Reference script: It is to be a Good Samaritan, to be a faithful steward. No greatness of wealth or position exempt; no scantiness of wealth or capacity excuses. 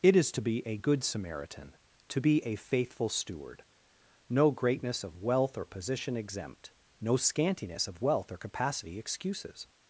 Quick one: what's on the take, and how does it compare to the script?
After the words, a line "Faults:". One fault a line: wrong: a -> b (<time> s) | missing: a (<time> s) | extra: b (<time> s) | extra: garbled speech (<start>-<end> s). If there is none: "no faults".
It is to be a Good Samaritan, to be a faithful steward. No greatness of wealth or position exempt; no scantiness of wealth or capacity excuses.
Faults:
no faults